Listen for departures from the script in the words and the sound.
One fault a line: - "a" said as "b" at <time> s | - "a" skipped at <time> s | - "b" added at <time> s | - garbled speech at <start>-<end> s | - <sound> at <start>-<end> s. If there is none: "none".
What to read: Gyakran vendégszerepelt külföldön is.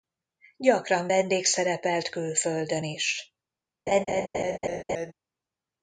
- laugh at 3.9-5.1 s